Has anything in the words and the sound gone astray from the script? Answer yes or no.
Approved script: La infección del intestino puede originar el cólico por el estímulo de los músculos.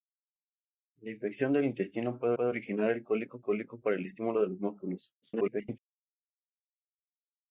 yes